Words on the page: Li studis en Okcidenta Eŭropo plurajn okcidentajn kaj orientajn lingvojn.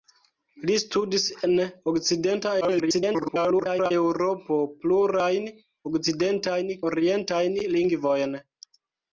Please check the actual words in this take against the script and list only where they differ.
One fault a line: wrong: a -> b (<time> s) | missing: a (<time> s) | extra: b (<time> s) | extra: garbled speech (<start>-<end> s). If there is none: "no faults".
extra: garbled speech (2.6-3.9 s)
missing: kaj (6.7 s)